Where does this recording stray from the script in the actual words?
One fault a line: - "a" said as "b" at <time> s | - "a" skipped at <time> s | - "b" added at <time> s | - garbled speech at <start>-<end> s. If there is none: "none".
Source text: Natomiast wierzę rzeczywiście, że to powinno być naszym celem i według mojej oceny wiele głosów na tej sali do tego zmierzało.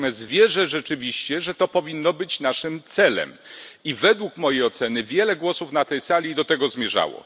none